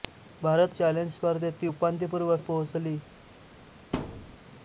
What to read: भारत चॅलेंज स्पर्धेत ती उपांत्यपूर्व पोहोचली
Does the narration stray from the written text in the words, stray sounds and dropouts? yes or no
yes